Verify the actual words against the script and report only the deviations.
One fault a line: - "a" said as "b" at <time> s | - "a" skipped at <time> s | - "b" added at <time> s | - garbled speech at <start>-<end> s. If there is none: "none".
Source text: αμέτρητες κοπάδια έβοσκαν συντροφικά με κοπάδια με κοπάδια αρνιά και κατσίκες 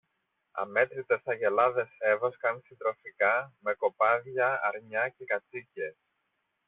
- "κοπάδια" said as "αγελάδες" at 1.2 s
- "με κοπάδια" skipped at 4.6 s